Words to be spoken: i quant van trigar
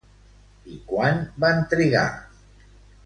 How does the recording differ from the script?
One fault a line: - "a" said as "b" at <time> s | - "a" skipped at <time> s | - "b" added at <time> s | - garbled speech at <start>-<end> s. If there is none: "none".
none